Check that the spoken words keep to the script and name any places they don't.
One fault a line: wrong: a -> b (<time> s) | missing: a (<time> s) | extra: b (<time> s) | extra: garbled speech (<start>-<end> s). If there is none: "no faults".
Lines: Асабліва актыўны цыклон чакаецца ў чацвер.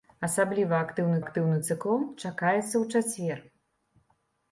extra: актыўны (1.2 s)